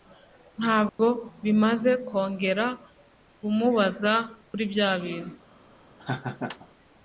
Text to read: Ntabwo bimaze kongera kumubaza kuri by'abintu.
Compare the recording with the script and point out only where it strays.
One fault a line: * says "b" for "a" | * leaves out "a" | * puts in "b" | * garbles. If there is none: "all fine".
all fine